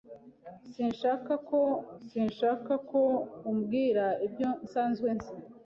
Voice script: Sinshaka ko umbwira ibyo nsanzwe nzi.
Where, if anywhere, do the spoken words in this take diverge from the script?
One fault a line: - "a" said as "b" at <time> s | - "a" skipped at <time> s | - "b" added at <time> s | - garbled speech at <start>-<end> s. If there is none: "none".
- "sinshaka ko" added at 2.1 s